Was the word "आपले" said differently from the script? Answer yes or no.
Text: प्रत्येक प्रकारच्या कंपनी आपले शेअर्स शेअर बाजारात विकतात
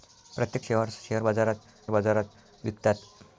yes